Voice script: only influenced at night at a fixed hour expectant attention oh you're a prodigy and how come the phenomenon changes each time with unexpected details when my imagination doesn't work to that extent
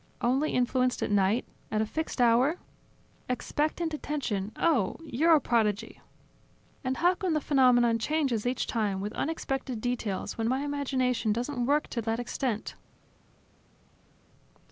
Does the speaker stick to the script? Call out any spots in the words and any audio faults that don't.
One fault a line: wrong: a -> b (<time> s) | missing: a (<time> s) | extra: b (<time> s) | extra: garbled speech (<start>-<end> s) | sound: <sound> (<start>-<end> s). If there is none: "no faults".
no faults